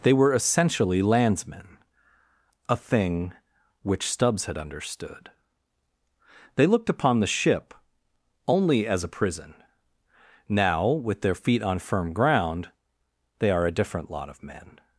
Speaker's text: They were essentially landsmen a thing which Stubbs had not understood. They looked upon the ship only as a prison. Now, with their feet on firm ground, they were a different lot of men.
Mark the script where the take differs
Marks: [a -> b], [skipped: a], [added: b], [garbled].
They were essentially landsmen a thing which Stubbs had [skipped: not] understood. They looked upon the ship only as a prison. Now, with their feet on firm ground, they [were -> are] a different lot of men.